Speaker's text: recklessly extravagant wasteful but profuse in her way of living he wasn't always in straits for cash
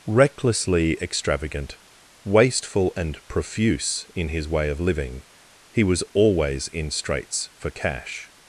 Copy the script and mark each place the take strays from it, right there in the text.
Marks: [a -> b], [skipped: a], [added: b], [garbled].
recklessly extravagant wasteful [but -> and] profuse in [her -> his] way of living he [wasn't -> was] always in straits for cash